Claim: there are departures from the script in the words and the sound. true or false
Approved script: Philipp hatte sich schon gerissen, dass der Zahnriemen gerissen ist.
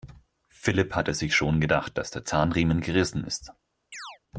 true